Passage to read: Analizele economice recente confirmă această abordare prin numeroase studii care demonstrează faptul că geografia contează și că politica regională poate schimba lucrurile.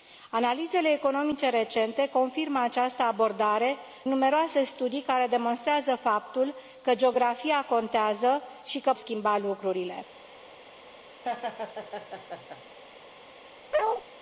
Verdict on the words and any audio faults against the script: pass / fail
fail